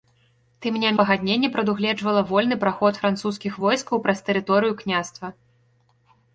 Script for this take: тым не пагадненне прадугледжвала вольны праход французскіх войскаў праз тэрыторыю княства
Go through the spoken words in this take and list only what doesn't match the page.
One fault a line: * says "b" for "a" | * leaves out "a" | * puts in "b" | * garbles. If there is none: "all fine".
all fine